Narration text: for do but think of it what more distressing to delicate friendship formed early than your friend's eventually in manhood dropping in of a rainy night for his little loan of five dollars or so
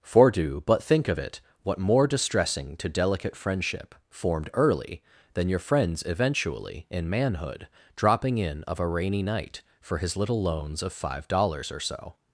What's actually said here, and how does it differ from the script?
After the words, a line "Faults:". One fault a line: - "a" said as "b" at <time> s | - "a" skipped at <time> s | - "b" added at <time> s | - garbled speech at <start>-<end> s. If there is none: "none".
for do but think of it what more distressing to delicate friendship formed early than your friend's eventually in manhood dropping in of a rainy night for his little loans of five dollars or so
Faults:
- "loan" said as "loans" at 10.4 s